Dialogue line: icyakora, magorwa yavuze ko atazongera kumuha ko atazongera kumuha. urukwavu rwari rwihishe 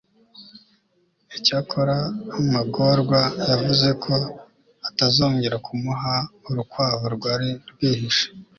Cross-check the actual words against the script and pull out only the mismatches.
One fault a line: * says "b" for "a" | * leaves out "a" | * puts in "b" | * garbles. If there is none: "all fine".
* leaves out "ko atazongera kumuha"